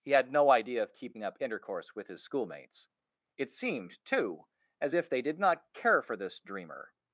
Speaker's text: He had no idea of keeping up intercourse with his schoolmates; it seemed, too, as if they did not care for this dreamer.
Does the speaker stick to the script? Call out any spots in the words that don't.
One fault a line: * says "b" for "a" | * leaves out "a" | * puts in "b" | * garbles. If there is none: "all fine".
all fine